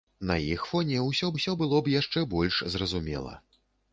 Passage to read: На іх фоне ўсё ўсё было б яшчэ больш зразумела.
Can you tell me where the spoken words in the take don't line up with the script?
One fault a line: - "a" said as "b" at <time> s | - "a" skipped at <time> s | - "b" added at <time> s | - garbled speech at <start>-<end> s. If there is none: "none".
none